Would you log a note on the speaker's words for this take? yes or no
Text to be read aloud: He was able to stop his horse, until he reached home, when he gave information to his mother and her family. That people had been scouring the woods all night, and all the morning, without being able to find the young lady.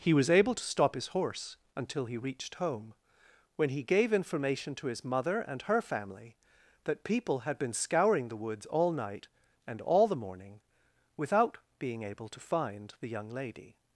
no